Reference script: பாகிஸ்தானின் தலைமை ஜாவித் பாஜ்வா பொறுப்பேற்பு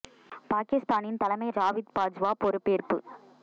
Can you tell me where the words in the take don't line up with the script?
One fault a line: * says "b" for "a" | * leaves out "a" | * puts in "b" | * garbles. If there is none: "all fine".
all fine